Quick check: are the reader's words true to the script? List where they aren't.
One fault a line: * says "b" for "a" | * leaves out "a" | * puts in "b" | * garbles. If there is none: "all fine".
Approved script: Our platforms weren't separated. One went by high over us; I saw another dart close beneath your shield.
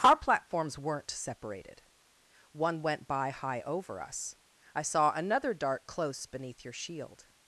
all fine